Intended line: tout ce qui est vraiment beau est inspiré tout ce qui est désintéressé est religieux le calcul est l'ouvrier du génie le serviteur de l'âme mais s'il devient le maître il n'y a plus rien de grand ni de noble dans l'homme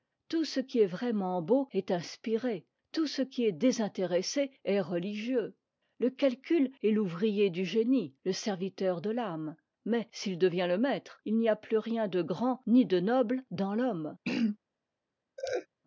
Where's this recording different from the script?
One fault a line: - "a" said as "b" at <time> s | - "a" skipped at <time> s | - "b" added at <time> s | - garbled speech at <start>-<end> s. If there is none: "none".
none